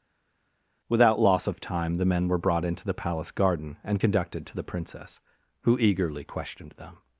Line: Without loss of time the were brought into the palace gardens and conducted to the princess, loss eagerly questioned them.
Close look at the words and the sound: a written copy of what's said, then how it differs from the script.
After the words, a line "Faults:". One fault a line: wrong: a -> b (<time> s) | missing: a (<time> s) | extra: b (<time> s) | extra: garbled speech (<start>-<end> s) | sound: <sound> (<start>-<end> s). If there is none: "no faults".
Without loss of time the men were brought into the palace garden and conducted to the princess, who eagerly questioned them.
Faults:
extra: men (2.0 s)
wrong: gardens -> garden (3.3 s)
wrong: loss -> who (5.6 s)